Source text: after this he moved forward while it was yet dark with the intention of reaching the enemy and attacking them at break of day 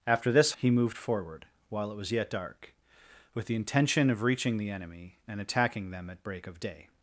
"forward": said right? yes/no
yes